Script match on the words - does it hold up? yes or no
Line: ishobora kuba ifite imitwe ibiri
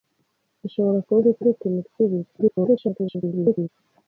no